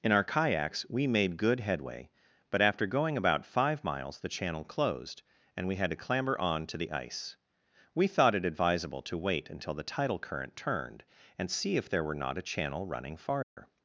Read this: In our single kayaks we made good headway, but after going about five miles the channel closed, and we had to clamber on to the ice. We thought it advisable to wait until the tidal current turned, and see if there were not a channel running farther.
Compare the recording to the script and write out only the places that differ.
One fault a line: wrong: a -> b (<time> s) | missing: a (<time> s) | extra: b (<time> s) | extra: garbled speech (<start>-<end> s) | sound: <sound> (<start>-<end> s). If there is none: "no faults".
missing: single (0.2 s)
sound: dropout (13.4-13.6 s)